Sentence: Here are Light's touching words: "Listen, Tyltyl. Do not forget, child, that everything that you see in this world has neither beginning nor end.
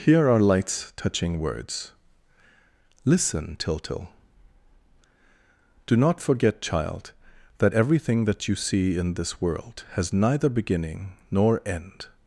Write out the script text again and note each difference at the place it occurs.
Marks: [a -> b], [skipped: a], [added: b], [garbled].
Here are Light's touching words: "Listen, Tyltyl. Do not forget, child, that everything that you see in this world has neither beginning nor end.